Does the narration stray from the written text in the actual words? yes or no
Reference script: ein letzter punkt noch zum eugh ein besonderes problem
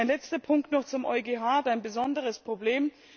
no